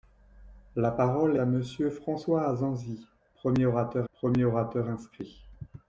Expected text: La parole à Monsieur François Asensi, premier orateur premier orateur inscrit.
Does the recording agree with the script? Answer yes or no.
yes